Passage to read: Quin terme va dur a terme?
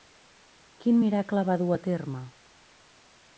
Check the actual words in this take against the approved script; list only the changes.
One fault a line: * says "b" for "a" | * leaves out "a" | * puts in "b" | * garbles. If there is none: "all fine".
* says "miracle" for "terme"